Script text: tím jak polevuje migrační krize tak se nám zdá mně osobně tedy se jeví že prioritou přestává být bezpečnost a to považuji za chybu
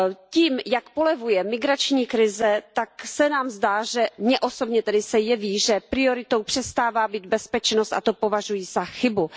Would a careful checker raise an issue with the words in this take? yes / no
no